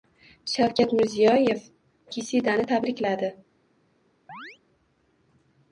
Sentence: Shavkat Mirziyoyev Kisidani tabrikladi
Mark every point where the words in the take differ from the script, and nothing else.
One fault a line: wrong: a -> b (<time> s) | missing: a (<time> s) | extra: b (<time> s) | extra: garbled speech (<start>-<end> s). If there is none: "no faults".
no faults